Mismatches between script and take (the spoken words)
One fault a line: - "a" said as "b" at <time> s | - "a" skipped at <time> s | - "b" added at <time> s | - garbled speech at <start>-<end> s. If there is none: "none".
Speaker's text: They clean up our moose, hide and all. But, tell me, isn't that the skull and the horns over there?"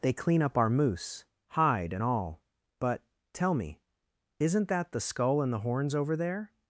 none